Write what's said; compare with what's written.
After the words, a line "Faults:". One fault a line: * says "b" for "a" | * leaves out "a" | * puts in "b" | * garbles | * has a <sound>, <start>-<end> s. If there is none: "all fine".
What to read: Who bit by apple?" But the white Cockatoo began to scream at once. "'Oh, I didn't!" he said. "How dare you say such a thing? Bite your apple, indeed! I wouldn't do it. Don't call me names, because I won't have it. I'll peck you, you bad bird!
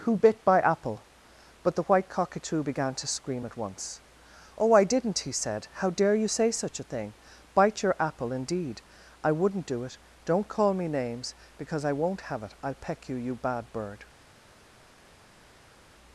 Who bit by apple?" But the white Cockatoo began to scream at once. "'Oh, I didn't!" he said. "How dare you say such a thing? Bite your apple, indeed! I wouldn't do it. Don't call me names, because I won't have it. I'll peck you, you bad bird!
Faults:
all fine